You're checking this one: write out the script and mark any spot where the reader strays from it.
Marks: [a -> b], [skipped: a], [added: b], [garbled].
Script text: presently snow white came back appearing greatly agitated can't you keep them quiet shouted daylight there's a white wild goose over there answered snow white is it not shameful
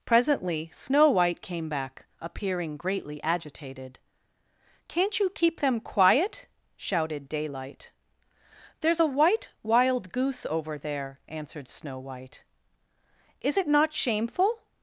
presently snow white came back appearing greatly agitated can't you keep them quiet shouted daylight there's a white wild goose over there answered snow white is it not shameful